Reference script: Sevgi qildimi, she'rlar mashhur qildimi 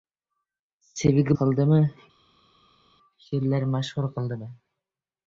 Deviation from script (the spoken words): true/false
false